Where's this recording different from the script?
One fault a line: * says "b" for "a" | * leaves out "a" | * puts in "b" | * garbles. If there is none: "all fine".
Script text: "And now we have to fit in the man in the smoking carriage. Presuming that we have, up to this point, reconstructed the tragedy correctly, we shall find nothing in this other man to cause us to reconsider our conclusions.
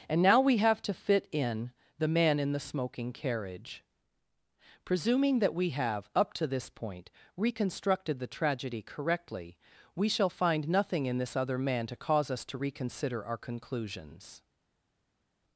all fine